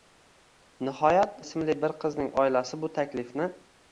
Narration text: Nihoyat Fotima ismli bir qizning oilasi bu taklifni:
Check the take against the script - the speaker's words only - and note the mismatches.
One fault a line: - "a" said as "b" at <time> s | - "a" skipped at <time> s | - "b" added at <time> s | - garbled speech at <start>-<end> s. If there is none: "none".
- "Fotima" skipped at 1.4 s